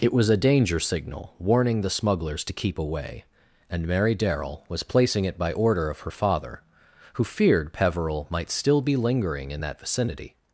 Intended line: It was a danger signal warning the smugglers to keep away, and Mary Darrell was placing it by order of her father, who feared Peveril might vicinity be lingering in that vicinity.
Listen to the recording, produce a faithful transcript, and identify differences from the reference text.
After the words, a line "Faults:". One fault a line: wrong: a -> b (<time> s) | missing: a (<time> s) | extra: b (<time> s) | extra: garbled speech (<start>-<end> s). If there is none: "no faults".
It was a danger signal warning the smugglers to keep away, and Mary Darrell was placing it by order of her father, who feared Peveril might still be lingering in that vicinity.
Faults:
wrong: vicinity -> still (8.5 s)